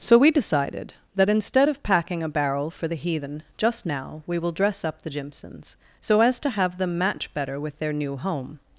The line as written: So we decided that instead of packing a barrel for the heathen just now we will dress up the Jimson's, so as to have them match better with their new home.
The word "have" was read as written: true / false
true